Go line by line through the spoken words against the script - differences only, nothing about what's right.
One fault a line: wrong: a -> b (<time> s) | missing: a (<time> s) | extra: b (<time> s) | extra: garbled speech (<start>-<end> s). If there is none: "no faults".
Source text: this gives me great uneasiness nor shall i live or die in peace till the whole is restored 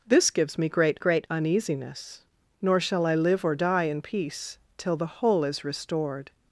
extra: great (1.0 s)